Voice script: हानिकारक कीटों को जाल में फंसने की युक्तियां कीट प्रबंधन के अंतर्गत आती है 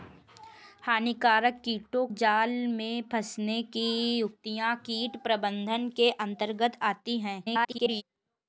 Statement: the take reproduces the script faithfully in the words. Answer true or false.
false